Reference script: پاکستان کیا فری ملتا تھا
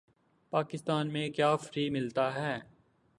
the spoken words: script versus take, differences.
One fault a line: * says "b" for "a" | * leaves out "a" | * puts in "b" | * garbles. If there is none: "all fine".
* puts in "میں"
* says "ہے" for "تھا"